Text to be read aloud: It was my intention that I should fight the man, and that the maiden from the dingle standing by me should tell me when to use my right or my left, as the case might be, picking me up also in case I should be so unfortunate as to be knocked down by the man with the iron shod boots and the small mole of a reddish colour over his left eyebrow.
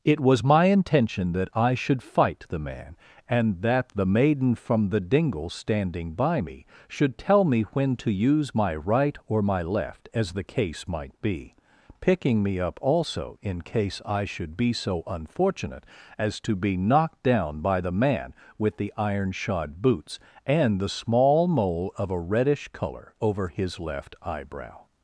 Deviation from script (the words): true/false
false